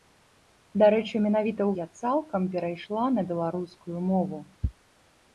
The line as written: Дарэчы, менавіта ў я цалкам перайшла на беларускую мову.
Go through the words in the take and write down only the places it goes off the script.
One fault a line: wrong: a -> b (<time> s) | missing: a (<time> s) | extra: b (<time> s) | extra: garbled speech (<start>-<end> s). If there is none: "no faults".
no faults